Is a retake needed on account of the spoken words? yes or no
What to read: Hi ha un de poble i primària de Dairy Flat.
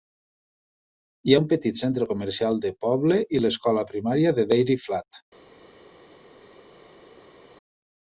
yes